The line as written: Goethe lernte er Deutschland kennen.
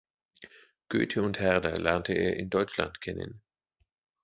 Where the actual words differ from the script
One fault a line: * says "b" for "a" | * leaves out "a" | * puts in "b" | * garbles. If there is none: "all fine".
* puts in "und Herder"
* puts in "in"